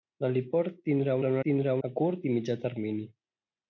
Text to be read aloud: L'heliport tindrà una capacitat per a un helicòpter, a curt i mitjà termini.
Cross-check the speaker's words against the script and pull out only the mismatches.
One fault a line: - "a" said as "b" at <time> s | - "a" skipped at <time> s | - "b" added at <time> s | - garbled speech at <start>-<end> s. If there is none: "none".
- "una capacitat per" skipped at 1.1 s
- "helicòpter" said as "tindrà" at 1.5 s